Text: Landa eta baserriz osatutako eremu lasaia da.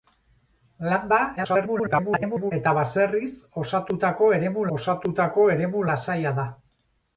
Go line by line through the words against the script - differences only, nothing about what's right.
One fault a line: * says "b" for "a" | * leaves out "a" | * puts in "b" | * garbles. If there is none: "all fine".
* garbles
* puts in "osatutako eremu"